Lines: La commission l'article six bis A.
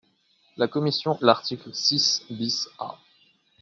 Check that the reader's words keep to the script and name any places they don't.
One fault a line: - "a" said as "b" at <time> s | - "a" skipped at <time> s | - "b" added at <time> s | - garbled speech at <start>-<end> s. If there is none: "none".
none